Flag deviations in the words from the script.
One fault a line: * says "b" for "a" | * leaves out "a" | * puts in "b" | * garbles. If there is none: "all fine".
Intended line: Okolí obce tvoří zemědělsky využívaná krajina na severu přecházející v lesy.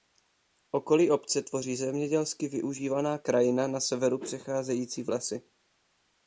all fine